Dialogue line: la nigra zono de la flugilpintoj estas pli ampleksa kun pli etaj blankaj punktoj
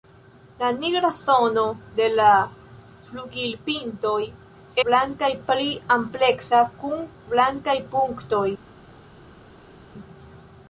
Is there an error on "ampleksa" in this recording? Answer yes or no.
no